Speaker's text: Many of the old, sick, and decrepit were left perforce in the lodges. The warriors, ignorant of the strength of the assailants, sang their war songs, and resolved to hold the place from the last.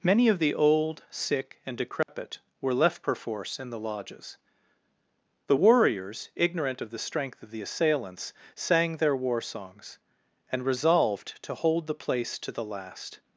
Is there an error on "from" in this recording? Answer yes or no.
yes